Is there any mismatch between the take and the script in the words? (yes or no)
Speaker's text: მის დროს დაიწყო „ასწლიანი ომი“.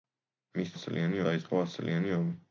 yes